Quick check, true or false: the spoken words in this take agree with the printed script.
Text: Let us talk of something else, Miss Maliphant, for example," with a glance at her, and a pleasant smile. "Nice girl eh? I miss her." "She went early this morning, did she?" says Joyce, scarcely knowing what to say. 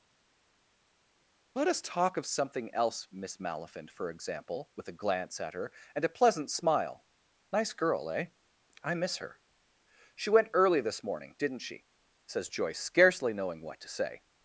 false